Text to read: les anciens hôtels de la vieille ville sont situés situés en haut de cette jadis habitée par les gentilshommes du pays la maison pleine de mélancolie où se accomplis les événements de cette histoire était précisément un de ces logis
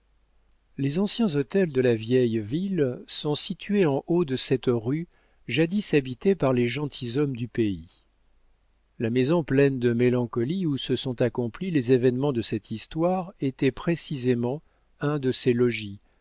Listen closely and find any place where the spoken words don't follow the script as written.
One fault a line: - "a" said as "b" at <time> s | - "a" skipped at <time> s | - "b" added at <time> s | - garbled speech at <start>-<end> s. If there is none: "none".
- "situés" skipped at 3.9 s
- "rue" added at 4.7 s
- "sont" added at 10.9 s